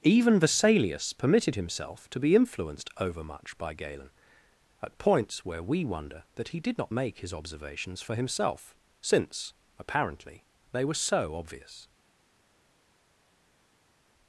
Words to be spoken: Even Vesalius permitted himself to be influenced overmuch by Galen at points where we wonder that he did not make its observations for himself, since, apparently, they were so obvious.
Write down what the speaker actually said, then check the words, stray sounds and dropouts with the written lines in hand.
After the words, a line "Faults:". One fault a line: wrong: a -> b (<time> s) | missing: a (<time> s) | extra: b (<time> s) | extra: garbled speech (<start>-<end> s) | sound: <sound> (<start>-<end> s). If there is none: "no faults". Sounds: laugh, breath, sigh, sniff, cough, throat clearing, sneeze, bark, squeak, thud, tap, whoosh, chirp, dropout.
Even Vesalius permitted himself to be influenced overmuch by Galen at points where we wonder that he did not make his observations for himself, since, apparently, they were so obvious.
Faults:
wrong: its -> his (7.2 s)